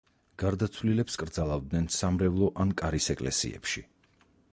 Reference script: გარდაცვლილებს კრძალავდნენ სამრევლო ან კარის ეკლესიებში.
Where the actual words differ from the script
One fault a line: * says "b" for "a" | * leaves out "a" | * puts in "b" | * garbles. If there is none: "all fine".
all fine